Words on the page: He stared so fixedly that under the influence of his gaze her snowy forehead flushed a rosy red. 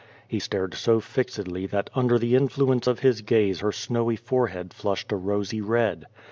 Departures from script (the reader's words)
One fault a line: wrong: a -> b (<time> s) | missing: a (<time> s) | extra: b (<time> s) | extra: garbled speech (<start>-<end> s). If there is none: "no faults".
no faults